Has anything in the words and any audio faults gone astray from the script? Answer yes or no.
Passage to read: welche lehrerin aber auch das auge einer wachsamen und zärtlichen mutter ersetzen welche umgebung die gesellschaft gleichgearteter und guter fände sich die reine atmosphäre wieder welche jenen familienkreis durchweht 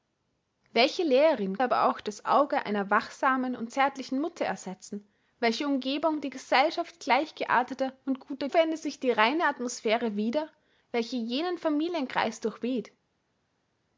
no